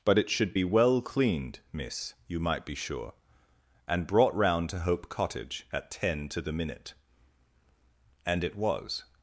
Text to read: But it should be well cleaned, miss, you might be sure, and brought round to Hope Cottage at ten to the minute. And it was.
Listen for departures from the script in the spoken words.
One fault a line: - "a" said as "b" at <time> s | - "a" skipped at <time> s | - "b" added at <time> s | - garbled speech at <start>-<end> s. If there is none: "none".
none